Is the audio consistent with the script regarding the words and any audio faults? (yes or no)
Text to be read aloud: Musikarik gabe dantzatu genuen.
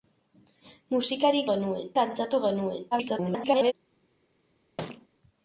no